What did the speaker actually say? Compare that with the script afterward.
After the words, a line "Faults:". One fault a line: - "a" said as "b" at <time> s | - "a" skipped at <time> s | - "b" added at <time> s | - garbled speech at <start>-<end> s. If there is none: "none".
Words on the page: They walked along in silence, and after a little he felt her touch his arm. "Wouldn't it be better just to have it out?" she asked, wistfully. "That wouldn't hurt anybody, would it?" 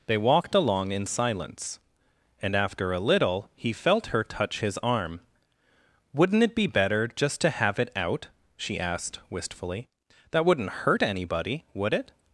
They walked along in silence, and after a little he felt her touch his arm. "Wouldn't it be better just to have it out?" she asked, wistfully. "That wouldn't hurt anybody, would it?"
Faults:
none